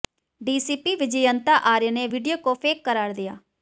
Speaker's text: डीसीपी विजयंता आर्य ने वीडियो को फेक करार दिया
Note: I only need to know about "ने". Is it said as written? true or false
true